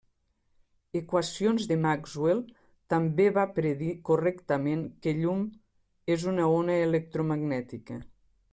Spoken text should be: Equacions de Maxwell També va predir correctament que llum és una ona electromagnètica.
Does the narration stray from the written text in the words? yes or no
no